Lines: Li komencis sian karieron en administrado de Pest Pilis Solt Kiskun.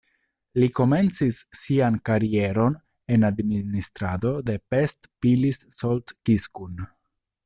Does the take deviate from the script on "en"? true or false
false